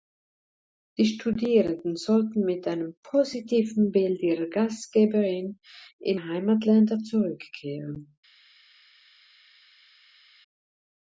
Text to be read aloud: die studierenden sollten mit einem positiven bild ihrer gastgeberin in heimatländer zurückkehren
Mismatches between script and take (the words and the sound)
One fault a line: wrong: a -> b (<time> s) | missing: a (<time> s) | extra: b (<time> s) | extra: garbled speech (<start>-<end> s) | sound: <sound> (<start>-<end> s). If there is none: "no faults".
no faults